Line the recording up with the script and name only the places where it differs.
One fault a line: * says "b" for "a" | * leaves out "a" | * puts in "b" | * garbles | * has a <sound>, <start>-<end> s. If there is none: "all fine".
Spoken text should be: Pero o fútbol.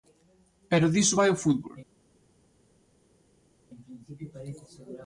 * puts in "diso vai"